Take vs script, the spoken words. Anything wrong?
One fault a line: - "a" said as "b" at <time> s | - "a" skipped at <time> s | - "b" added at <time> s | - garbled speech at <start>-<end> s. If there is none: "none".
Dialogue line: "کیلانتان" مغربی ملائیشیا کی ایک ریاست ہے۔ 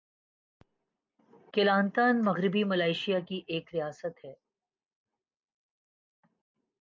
none